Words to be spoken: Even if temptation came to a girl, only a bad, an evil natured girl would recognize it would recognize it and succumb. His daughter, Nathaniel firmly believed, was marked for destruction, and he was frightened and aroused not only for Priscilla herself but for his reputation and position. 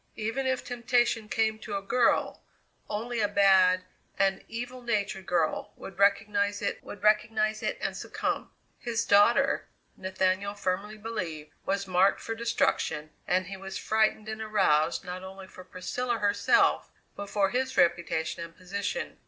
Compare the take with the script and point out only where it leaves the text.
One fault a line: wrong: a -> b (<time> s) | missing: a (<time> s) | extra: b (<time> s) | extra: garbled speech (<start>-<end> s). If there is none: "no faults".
no faults